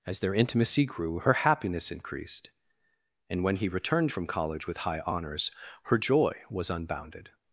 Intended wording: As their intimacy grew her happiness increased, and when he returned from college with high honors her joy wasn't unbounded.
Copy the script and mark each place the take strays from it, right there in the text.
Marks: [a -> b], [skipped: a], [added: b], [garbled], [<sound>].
As their intimacy grew her happiness increased, and when he returned from college with high honors her joy [wasn't -> was] unbounded.